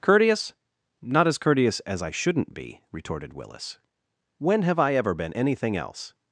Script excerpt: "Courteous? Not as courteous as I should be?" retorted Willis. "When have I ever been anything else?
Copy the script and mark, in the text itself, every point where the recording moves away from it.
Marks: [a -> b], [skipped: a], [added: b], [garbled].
"Courteous? Not as courteous as I [should -> shouldn't] be?" retorted Willis. "When have I ever been anything else?